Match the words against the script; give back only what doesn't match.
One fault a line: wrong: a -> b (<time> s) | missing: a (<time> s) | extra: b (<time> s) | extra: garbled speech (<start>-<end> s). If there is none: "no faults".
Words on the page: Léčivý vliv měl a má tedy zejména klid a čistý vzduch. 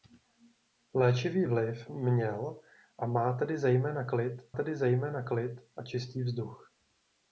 extra: tedy zejména klid (4.5 s)